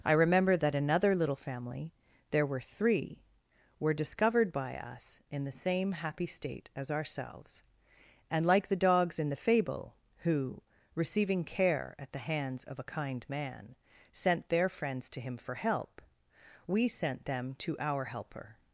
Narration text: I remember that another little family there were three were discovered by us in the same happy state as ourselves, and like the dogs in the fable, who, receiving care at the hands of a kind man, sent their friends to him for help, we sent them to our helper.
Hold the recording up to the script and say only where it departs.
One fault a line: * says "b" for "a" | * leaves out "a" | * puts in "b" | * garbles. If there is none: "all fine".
all fine